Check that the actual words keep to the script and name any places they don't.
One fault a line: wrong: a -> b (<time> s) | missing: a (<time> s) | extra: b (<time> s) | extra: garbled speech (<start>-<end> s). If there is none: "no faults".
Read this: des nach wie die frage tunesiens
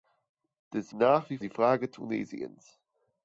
no faults